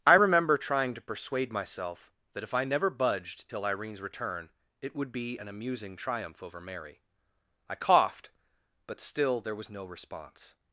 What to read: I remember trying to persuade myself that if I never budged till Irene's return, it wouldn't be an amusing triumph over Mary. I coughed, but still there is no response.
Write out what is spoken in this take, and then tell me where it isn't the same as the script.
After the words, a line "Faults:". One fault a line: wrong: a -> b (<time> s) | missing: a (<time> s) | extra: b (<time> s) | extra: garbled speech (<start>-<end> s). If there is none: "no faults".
I remember trying to persuade myself that if I never budged till Irene's return, it would be an amusing triumph over Mary. I coughed, but still there was no response.
Faults:
wrong: wouldn't -> would (4.9 s)
wrong: is -> was (9.5 s)